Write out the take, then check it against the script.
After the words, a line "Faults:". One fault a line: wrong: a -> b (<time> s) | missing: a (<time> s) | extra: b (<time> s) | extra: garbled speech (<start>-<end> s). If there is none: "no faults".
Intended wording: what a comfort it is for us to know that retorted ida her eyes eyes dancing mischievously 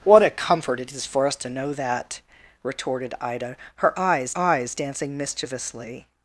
what a comfort it is for us to know that retorted ida her eyes eyes dancing mischievously
Faults:
no faults